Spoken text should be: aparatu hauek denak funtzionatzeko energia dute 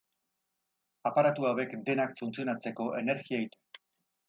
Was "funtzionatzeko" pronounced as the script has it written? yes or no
yes